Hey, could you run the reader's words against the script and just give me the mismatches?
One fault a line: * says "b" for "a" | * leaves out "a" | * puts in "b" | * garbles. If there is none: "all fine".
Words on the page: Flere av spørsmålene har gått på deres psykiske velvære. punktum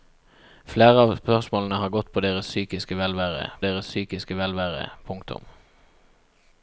* puts in "deres psykiske velvære"